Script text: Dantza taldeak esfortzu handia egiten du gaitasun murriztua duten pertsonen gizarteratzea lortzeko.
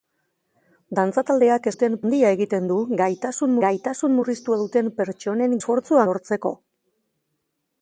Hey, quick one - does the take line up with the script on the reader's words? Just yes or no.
no